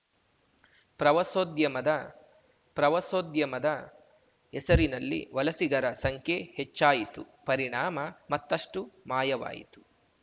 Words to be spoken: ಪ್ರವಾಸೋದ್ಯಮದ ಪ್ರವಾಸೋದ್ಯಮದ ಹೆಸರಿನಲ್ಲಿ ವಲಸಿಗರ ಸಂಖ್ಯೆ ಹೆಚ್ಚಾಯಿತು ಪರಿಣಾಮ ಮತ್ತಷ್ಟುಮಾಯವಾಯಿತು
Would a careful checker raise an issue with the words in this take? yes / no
no